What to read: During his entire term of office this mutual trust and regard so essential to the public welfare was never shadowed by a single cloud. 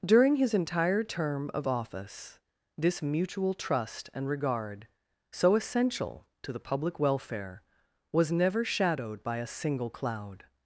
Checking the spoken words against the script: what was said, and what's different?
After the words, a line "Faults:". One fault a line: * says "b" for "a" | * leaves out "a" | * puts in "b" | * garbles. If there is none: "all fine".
During his entire term of office this mutual trust and regard so essential to the public welfare was never shadowed by a single cloud.
Faults:
all fine